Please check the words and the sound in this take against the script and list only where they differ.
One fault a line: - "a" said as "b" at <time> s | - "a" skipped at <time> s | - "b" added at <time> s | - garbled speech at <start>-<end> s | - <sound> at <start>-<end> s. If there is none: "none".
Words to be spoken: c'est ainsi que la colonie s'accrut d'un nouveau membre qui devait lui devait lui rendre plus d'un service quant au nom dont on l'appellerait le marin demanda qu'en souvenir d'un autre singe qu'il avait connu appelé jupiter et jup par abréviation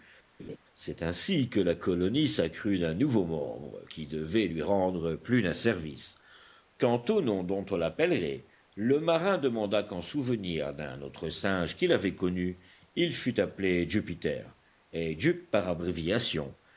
- laugh at 0.4-0.6 s
- "devait lui" skipped at 4.6 s
- "il fût" added at 12.9 s